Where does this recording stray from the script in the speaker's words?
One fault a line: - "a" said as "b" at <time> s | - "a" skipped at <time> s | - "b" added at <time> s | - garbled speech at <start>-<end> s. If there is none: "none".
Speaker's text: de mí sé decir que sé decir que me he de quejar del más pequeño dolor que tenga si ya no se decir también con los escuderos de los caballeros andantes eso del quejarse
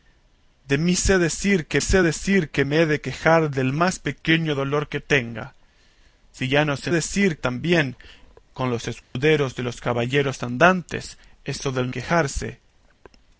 none